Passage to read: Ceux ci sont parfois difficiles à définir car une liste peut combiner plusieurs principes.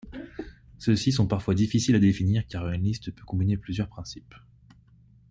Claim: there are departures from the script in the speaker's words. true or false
false